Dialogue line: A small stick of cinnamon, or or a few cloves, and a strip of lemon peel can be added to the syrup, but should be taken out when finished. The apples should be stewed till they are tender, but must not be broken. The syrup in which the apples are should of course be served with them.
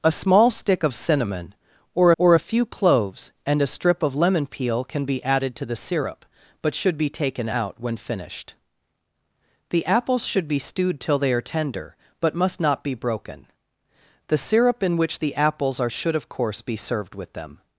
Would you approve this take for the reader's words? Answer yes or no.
yes